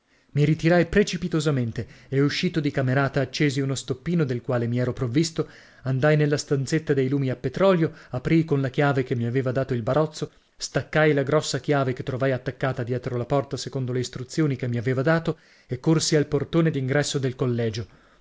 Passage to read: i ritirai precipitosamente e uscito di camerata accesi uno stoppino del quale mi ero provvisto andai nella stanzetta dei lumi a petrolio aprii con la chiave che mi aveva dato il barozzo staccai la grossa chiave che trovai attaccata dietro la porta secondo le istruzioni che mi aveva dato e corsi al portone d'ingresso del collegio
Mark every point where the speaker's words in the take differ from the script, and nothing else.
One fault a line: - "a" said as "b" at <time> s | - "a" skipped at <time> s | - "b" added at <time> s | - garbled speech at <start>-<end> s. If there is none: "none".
none